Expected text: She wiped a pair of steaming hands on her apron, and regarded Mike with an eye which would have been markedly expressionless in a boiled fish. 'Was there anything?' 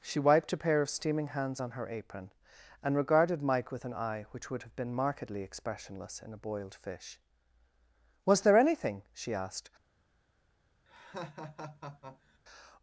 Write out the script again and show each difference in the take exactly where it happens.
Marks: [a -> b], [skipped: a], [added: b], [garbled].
She wiped a pair of steaming hands on her apron, and regarded Mike with an eye which would have been markedly expressionless in a boiled fish. 'Was there anything?' [added: she asked]